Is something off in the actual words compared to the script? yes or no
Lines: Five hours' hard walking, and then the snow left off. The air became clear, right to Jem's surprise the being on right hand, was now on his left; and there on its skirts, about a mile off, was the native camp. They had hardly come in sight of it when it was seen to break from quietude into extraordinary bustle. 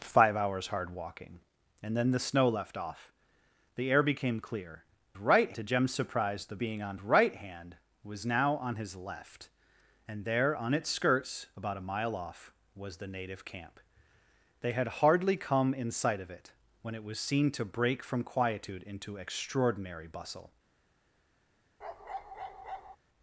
no